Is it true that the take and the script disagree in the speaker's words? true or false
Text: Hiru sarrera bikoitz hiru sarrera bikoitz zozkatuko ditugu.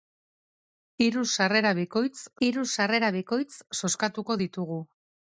false